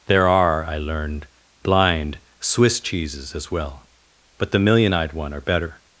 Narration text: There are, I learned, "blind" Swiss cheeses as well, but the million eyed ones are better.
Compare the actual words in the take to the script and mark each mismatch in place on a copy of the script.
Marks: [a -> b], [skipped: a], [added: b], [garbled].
There are, I learned, "blind" Swiss cheeses as well, but the million eyed [ones -> one] are better.